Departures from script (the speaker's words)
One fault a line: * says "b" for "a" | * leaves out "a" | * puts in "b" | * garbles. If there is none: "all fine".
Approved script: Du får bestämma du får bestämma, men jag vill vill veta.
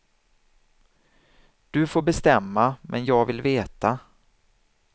* leaves out "du får bestämma"
* leaves out "vill"